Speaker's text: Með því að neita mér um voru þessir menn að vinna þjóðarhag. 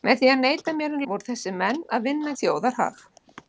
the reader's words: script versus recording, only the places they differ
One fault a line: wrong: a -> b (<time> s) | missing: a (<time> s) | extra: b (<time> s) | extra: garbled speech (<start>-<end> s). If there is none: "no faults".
no faults